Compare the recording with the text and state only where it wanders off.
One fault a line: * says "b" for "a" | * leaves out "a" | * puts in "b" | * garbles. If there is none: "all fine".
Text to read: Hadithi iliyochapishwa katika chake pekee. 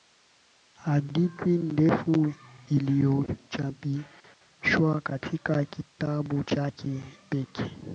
* puts in "ndefu"
* puts in "kitabu"